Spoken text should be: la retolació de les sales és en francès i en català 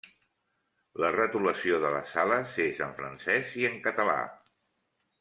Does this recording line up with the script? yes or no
yes